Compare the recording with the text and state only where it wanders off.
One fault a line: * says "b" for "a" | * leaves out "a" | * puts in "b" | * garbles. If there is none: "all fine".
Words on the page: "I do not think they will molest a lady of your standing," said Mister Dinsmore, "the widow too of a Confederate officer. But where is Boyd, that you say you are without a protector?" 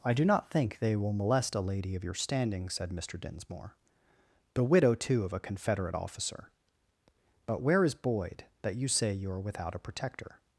all fine